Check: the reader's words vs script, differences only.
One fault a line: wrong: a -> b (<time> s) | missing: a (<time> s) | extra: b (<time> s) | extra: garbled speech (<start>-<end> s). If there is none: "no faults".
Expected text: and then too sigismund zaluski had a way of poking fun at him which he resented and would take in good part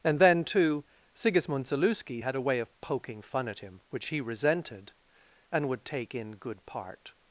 no faults